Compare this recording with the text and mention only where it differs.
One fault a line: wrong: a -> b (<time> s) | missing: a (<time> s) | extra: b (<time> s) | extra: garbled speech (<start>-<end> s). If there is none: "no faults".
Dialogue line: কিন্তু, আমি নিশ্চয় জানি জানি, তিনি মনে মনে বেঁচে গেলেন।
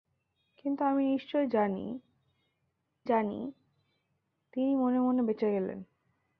no faults